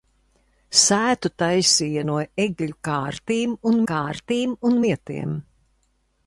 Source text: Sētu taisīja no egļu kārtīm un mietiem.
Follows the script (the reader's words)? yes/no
no